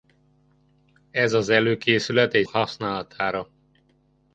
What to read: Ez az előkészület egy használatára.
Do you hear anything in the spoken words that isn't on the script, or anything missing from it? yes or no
no